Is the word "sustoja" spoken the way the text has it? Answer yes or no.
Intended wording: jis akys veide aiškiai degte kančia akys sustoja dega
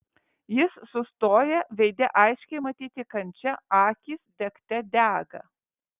no